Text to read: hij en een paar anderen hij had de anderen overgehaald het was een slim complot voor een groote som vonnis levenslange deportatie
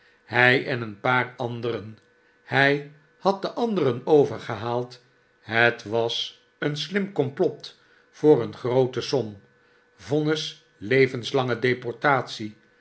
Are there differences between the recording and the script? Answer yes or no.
no